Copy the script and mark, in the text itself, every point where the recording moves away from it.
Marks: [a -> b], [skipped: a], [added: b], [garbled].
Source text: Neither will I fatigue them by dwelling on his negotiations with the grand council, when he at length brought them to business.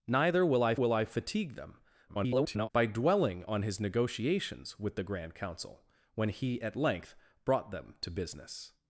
Neither will I [added: will I] fatigue them [garbled] by dwelling on his negotiations with the grand council, when he at length brought them to business.